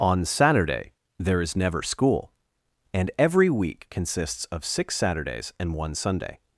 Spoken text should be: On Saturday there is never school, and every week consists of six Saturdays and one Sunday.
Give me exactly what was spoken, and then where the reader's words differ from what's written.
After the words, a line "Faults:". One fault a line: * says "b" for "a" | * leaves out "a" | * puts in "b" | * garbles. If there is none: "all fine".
On Saturday there is never school, and every week consists of six Saturdays and one Sunday.
Faults:
all fine